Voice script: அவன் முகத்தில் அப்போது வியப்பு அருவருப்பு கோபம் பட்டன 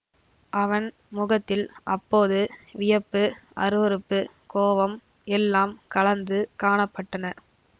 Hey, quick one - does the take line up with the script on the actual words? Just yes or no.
no